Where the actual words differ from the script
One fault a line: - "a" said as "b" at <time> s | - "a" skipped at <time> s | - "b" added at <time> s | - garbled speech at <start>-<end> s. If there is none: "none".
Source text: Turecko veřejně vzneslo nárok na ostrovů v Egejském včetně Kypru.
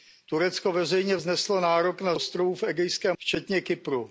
none